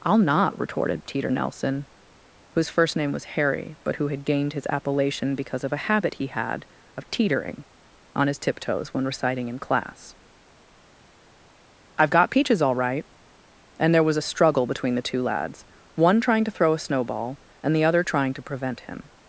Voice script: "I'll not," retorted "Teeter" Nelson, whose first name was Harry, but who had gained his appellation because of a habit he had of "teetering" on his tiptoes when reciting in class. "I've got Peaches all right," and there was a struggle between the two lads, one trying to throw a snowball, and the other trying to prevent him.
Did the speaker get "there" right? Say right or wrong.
right